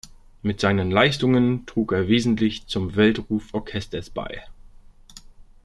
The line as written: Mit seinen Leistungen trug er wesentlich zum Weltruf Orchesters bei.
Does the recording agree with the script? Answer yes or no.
yes